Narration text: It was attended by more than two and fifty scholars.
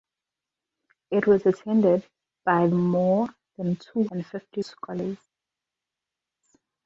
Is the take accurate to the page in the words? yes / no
yes